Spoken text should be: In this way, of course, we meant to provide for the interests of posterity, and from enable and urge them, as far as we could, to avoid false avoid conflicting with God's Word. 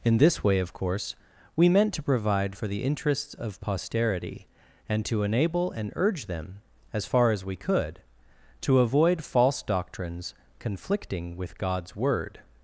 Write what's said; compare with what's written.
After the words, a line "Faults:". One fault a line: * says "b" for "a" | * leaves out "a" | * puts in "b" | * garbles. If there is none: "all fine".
In this way, of course, we meant to provide for the interests of posterity, and to enable and urge them, as far as we could, to avoid false doctrines conflicting with God's Word.
Faults:
* says "to" for "from"
* says "doctrines" for "avoid"